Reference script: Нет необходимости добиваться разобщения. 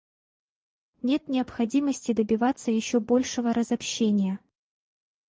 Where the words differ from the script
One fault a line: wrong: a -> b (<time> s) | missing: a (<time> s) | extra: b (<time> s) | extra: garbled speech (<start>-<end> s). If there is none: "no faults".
extra: еще большего (2.7 s)